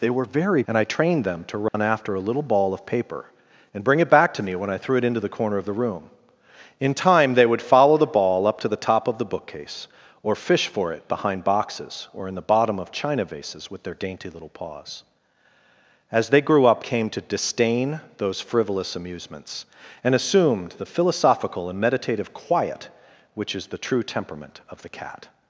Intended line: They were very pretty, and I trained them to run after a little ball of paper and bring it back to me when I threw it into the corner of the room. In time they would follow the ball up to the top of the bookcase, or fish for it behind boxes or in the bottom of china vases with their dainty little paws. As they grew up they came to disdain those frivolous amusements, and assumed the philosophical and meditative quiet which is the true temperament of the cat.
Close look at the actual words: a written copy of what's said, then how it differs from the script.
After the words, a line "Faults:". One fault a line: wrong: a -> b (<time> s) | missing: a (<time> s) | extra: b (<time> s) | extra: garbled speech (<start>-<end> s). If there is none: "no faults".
They were very and I trained them to run after a little ball of paper and bring it back to me when I threw it into the corner of the room. In time they would follow the ball up to the top of the bookcase, or fish for it behind boxes or in the bottom of china vases with their dainty little paws. As they grew up came to disdain those frivolous amusements, and assumed the philosophical and meditative quiet which is the true temperament of the cat.
Faults:
missing: pretty (0.6 s)
missing: they (16.8 s)